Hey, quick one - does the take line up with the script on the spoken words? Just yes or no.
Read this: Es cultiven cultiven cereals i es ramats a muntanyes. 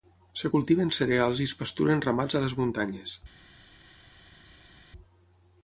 no